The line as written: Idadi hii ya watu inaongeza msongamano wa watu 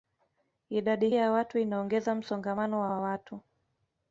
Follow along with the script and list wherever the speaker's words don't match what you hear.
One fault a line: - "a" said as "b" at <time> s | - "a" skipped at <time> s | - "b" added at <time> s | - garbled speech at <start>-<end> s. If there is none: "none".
- "hii" skipped at 1.1 s
- "wa" added at 2.9 s